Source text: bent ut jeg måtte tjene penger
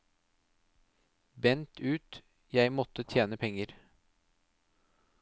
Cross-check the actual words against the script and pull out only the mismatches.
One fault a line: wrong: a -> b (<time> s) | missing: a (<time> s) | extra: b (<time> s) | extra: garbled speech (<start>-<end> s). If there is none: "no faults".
no faults